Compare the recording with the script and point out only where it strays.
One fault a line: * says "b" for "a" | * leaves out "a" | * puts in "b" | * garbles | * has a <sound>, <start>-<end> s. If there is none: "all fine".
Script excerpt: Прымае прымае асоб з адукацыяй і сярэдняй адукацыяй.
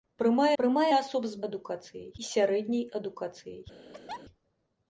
* has a laugh, 3.9-4.2 s